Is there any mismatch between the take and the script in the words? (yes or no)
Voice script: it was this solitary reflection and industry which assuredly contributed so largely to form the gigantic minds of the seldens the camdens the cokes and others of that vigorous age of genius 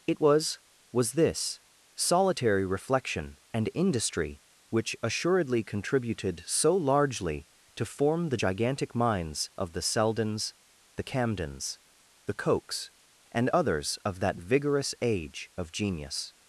yes